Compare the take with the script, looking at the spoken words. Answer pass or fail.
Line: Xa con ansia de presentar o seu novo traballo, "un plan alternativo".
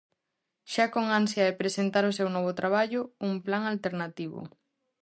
pass